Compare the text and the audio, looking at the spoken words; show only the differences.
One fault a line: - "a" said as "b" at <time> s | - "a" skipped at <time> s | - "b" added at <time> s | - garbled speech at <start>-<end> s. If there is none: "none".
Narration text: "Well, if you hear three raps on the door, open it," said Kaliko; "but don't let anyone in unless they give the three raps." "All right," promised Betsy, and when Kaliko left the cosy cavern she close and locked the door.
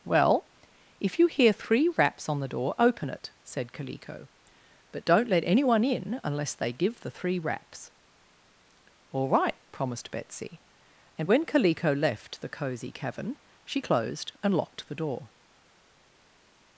- "close" said as "closed" at 13.8 s